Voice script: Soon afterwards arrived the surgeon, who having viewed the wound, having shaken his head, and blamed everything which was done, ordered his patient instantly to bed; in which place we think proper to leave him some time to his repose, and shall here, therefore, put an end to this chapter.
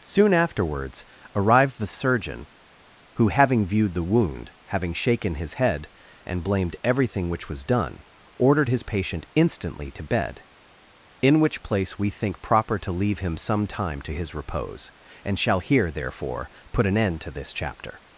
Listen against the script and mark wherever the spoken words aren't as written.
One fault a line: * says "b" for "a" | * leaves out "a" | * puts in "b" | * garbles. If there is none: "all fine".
all fine